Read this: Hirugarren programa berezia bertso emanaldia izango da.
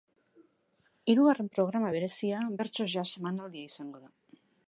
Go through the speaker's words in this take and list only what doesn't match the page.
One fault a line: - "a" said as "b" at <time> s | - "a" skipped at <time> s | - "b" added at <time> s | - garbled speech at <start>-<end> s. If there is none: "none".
- "jazz" added at 3.0 s